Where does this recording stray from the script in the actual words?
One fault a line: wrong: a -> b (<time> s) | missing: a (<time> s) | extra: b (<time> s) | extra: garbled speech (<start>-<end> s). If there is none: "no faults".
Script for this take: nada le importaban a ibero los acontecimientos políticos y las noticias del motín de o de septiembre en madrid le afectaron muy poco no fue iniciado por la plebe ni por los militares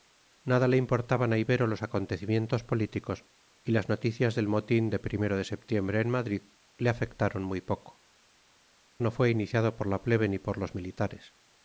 no faults